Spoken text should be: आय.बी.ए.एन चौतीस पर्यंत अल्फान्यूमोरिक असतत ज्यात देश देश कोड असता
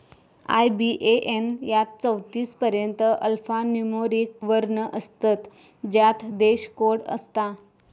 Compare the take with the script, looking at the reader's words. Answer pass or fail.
fail